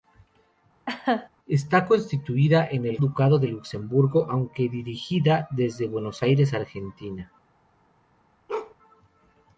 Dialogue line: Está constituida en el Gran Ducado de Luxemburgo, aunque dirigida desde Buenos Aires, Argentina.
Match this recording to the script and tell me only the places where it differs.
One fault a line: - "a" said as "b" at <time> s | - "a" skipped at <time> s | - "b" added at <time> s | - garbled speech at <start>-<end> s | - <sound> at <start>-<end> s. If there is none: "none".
- laugh at 0.9-1.3 s
- "Gran" skipped at 3.0 s
- bark at 8.5-8.8 s